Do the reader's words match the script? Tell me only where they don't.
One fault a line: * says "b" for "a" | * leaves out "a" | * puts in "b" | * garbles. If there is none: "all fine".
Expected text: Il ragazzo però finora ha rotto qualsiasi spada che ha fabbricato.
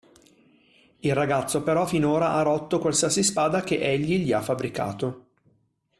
* puts in "egli gli"